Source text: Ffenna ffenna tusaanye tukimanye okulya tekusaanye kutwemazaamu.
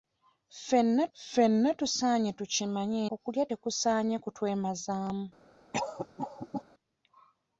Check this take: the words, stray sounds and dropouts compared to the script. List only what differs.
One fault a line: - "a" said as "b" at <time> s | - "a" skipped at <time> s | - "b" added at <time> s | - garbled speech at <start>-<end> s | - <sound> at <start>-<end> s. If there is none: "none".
- cough at 5.7-6.6 s